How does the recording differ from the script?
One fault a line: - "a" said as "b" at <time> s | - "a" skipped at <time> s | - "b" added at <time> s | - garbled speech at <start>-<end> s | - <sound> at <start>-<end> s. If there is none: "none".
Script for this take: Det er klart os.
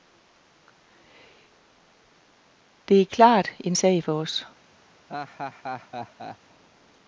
- "en sag for" added at 3.6 s
- laugh at 5.1-6.4 s